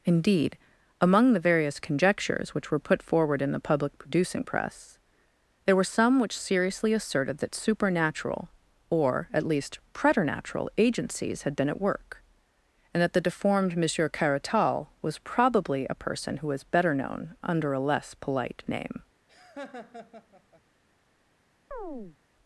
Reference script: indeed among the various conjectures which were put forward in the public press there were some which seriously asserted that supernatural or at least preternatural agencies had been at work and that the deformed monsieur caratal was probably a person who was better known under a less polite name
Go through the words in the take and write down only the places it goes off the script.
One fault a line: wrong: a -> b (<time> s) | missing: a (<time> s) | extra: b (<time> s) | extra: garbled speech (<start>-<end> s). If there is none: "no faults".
extra: producing (4.0 s)